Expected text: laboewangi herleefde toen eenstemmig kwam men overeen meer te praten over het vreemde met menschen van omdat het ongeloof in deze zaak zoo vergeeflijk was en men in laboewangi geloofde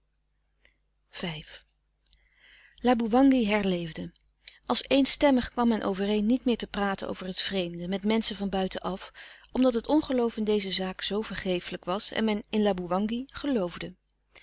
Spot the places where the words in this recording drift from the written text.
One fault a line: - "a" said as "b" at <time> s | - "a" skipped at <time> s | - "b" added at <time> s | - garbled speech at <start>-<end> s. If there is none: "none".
- "toen" said as "als" at 4.7 s
- "niet" added at 6.2 s
- "buiten af" added at 8.5 s